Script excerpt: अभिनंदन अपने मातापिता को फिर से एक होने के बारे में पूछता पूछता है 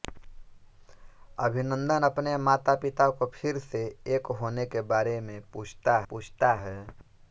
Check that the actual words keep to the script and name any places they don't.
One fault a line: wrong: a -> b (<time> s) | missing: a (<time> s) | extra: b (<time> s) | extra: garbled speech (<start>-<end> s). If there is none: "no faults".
no faults